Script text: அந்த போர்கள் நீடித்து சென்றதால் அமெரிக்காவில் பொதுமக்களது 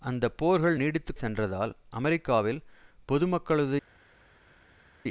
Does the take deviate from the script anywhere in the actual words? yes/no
no